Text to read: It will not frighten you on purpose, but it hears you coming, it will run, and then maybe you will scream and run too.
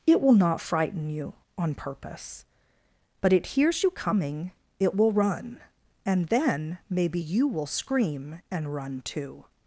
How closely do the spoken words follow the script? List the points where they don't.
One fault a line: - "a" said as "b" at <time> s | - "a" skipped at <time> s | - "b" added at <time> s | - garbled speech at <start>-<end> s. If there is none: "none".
none